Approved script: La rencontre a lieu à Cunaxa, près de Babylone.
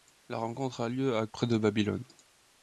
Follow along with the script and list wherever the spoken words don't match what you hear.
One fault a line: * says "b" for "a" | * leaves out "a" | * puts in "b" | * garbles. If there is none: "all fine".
* leaves out "Cunaxa"